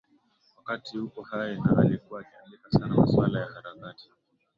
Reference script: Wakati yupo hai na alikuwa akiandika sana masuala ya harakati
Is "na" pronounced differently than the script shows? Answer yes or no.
no